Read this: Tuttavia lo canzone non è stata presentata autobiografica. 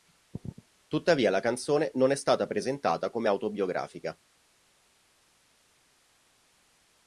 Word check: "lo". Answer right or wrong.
wrong